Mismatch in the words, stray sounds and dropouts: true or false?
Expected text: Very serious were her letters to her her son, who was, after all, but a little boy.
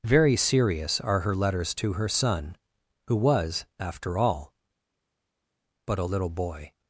true